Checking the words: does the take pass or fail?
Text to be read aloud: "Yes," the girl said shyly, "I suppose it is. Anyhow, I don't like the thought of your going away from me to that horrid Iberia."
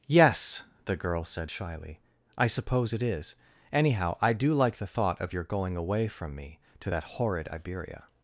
fail